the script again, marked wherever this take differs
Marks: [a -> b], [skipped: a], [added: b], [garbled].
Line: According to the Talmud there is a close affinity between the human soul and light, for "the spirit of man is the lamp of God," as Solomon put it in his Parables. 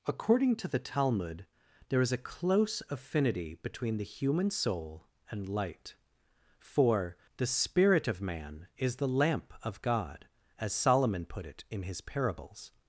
According to the Talmud there is a close affinity between the human soul and light, for "the spirit of man is the lamp of God," as Solomon put it in his Parables.